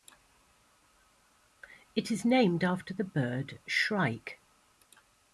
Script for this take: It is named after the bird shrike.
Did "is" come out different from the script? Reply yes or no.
no